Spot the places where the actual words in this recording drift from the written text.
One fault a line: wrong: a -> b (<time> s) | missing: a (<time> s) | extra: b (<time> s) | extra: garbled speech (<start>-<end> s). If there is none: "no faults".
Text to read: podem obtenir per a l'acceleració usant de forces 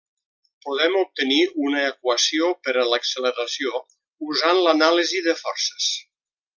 extra: una equació (1.6 s)
extra: l'anàlisi (4.7 s)